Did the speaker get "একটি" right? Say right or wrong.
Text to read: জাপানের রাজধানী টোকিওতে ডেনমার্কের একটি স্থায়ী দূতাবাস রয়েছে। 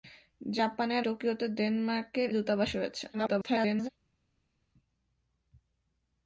wrong